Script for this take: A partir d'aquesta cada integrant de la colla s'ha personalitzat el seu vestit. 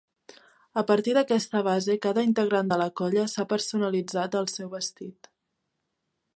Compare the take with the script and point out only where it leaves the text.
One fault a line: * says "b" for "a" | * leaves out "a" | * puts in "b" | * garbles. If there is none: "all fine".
* puts in "base"